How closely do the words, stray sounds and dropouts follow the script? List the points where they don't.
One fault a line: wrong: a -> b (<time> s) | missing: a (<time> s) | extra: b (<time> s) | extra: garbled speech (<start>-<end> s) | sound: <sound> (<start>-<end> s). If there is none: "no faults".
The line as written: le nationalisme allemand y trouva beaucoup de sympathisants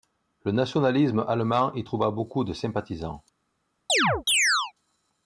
sound: chirp (3.9-4.7 s)